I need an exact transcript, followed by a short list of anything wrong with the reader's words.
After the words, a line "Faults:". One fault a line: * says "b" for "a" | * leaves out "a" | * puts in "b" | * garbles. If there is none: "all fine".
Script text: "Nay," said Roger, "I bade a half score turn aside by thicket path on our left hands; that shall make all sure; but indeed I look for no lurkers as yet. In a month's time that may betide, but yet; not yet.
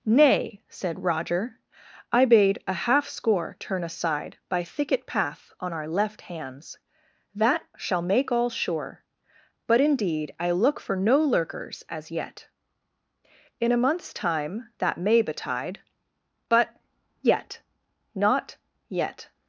"Nay," said Roger, "I bade a half score turn aside by thicket path on our left hands; that shall make all sure; but indeed I look for no lurkers as yet. In a month's time that may betide, but yet; not yet.
Faults:
all fine